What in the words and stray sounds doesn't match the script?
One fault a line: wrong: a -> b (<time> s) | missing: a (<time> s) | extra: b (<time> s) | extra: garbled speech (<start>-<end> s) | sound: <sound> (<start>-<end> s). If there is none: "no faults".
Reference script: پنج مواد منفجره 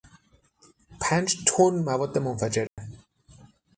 extra: تن (1.4 s)
sound: dropout (2.7-2.8 s)